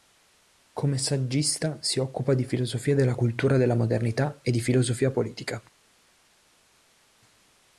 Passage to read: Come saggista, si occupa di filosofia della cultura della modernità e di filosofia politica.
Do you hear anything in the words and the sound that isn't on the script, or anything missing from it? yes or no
no